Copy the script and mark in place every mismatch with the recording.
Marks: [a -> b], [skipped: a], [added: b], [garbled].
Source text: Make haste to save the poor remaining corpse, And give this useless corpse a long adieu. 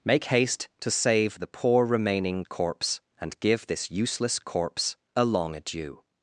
Make haste to save the poor remaining corpse, And give this useless corpse a long adieu.